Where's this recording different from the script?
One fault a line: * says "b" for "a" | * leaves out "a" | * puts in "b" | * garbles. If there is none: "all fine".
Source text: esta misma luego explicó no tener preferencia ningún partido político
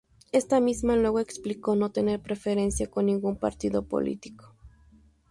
* puts in "con"